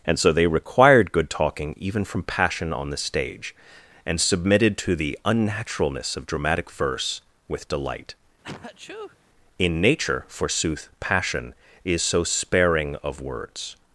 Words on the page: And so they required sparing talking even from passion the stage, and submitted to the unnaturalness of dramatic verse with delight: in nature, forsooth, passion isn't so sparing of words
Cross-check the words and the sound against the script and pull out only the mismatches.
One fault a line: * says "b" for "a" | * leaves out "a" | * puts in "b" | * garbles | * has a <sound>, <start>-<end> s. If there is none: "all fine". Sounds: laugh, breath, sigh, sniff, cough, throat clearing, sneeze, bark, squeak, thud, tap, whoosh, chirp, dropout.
* says "good" for "sparing"
* puts in "on"
* has a sneeze, 8.4-9.2 s
* says "is" for "isn't"